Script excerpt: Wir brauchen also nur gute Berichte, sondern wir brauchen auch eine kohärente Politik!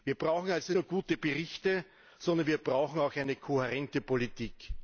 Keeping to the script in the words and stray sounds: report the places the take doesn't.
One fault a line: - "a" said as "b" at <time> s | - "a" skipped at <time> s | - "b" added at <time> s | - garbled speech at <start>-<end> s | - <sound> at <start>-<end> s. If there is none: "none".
none